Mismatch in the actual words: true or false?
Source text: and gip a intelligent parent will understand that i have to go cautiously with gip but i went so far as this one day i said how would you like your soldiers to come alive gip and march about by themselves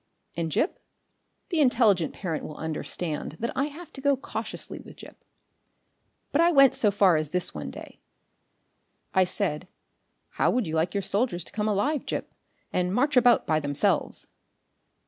true